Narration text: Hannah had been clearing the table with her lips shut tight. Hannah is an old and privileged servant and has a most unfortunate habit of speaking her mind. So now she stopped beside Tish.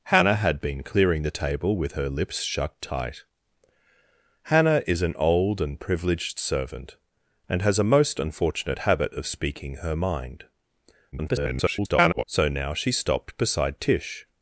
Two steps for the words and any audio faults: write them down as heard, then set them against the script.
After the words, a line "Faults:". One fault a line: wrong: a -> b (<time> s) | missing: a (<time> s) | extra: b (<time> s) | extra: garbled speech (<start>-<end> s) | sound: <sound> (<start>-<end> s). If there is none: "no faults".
Hannah had been clearing the table with her lips shut tight. Hannah is an old and privileged servant and has a most unfortunate habit of speaking her mind. [garbled] So now she stopped beside Tish.
Faults:
extra: garbled speech (11.1-12.2 s)